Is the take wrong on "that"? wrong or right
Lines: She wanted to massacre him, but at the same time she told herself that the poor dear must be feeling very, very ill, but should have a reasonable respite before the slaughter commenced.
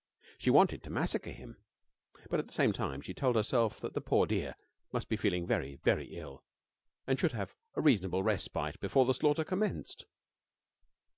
right